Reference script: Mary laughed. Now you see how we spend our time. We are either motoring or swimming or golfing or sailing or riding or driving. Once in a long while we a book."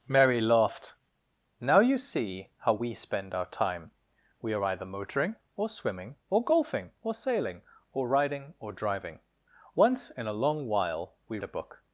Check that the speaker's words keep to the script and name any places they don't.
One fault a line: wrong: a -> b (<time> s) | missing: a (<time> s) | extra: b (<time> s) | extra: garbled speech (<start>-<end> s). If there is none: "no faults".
no faults